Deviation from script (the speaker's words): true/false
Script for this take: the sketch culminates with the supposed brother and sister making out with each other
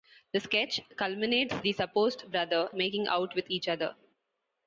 true